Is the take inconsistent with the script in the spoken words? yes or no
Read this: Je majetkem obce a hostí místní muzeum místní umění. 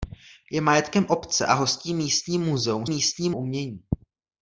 no